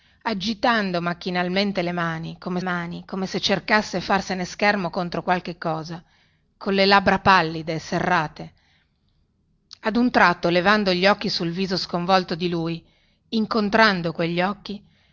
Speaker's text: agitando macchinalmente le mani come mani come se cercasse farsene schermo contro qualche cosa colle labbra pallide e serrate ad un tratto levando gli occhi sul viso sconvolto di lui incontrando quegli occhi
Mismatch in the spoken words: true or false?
false